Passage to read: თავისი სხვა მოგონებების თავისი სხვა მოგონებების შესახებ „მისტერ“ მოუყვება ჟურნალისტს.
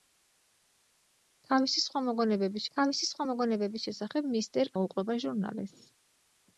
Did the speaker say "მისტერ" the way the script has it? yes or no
yes